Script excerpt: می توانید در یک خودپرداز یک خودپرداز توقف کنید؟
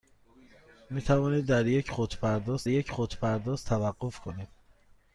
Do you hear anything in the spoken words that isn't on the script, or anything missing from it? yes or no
no